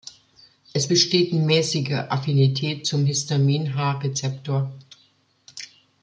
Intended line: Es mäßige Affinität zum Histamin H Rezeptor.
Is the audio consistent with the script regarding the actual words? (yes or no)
no